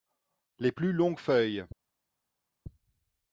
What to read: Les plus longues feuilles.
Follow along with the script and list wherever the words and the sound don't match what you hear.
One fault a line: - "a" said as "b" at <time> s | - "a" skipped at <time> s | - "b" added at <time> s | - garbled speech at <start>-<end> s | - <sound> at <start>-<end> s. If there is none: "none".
none